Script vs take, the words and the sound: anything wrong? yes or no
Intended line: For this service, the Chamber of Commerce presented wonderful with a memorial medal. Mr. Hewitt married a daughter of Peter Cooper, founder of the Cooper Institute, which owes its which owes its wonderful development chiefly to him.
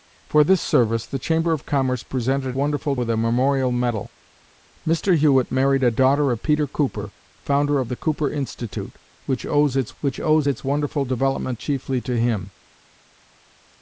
no